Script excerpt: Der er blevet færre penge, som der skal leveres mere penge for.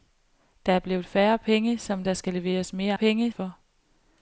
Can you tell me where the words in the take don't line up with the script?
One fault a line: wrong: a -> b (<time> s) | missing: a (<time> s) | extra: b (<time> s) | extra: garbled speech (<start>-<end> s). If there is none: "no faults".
no faults